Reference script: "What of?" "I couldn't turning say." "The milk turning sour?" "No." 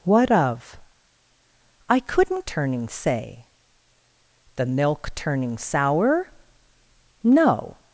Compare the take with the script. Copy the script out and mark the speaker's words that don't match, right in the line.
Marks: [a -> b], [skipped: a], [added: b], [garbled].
"What of?" "I couldn't turning say." "The milk turning sour?" "No."